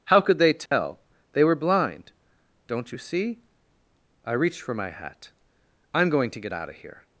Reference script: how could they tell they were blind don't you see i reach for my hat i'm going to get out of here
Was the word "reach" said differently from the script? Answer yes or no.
yes